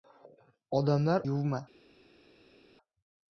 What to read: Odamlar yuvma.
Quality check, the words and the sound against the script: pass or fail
pass